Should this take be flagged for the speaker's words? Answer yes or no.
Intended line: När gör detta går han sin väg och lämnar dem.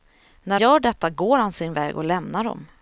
no